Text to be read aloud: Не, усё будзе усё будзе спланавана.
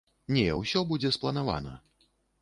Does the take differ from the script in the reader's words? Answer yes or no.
yes